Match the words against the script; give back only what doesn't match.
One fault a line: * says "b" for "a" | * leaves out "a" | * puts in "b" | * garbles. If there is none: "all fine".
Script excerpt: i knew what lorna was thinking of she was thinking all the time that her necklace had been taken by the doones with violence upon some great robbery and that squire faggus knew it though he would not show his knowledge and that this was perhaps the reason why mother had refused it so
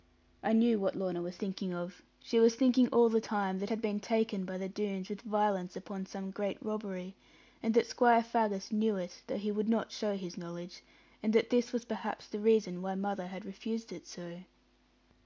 * leaves out "her necklace"